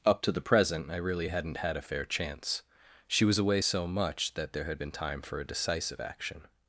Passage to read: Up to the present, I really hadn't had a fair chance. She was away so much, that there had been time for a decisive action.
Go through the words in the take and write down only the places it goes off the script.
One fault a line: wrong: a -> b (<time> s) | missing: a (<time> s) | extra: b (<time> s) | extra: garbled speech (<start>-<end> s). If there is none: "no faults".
no faults